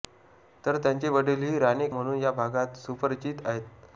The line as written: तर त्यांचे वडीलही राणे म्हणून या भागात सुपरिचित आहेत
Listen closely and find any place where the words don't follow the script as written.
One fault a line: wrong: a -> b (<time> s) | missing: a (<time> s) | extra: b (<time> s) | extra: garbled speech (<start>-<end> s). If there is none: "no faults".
no faults